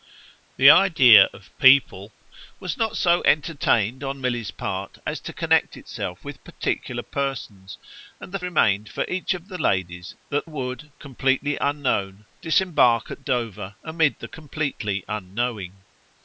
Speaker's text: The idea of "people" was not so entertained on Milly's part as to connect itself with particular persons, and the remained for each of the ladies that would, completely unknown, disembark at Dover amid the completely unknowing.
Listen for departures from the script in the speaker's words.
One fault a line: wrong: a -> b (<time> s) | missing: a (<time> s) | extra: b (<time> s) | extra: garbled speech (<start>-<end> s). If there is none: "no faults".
no faults